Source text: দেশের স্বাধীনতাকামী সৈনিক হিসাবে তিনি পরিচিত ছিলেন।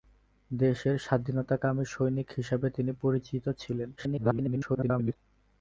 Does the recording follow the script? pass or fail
fail